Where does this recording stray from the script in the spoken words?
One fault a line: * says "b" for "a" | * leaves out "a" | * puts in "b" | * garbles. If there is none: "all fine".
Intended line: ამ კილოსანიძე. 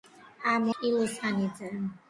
all fine